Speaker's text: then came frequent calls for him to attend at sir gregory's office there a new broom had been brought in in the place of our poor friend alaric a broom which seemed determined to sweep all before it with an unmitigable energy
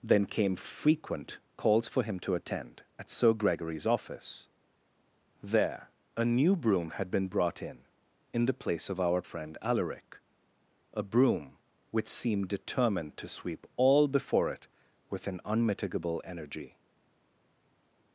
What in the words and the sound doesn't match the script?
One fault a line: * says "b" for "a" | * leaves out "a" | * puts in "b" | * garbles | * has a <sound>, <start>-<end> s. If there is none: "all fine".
* leaves out "poor"